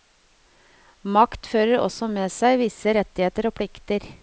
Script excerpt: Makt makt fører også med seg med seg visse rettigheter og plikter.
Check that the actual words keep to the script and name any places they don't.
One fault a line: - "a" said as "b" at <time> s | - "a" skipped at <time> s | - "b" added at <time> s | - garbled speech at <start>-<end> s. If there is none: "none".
- "makt" skipped at 1.5 s
- "med seg" skipped at 2.6 s